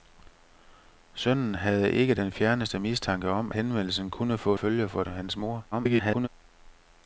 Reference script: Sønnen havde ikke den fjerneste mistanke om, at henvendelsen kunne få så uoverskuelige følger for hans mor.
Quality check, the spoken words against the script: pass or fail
fail